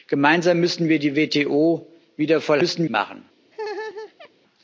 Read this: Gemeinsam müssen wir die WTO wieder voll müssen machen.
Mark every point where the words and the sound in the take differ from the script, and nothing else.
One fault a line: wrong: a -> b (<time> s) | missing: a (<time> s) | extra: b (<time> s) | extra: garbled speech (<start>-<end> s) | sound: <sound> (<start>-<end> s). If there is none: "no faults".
sound: laugh (3.5-4.3 s)